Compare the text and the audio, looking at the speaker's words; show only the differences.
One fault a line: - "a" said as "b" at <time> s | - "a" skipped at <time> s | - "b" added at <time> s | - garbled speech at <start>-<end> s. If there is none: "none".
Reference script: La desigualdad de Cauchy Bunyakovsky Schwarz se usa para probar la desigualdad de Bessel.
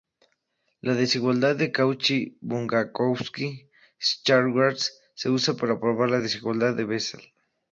none